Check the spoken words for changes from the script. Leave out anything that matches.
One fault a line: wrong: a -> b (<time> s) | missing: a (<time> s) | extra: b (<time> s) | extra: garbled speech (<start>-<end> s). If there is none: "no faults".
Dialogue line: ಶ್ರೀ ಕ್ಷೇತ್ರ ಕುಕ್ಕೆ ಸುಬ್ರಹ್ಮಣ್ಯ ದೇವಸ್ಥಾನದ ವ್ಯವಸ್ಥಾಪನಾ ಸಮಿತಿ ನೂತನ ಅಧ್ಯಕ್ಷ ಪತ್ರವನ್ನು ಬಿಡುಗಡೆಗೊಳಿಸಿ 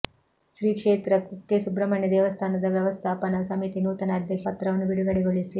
no faults